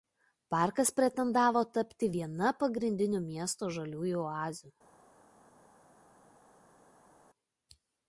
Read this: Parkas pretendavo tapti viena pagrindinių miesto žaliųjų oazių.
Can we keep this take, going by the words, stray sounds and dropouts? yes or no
yes